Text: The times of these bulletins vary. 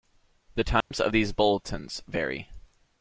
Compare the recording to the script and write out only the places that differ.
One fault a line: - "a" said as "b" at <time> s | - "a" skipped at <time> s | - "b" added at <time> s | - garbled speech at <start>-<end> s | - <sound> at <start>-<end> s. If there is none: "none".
- dropout at 0.8-0.9 s